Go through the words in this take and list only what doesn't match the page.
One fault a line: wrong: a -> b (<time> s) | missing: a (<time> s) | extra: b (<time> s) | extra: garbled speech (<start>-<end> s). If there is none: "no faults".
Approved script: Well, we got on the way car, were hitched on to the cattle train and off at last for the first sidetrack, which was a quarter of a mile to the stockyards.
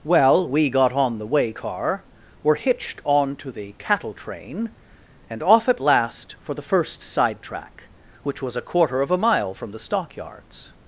wrong: to -> from (9.5 s)